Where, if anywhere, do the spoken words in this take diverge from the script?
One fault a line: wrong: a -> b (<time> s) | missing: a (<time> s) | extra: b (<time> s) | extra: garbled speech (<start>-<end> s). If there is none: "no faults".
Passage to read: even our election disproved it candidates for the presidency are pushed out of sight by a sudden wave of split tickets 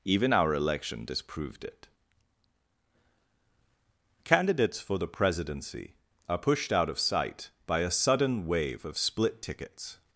no faults